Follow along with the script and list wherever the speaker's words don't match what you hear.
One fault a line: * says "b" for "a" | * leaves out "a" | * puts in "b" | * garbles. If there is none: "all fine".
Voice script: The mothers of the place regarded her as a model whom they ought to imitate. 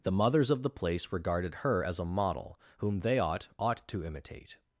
* puts in "ought"